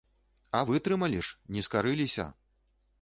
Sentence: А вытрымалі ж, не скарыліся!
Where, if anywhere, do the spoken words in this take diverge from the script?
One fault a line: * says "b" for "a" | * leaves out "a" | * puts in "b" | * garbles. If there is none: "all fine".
all fine